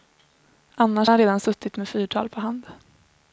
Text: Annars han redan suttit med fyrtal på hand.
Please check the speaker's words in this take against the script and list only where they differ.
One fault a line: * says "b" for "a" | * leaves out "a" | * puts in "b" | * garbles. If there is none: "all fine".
all fine